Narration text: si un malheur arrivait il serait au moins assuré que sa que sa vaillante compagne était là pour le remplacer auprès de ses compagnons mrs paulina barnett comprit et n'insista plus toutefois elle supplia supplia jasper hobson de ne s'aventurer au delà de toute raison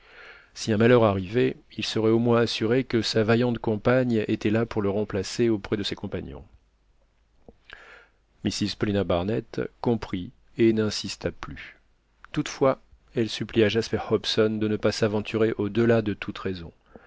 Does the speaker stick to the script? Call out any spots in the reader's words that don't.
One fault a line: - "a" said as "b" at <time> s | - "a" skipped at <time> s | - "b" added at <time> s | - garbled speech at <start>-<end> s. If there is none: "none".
- "que sa" skipped at 3.2 s
- "supplia" skipped at 13.7 s
- "pas" added at 14.8 s